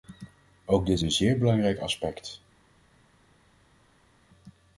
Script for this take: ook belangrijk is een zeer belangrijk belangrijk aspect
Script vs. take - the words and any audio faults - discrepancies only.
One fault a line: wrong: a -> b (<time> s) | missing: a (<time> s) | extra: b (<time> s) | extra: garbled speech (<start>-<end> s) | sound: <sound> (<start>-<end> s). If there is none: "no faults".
wrong: belangrijk -> dit (0.8 s)
missing: belangrijk (1.8 s)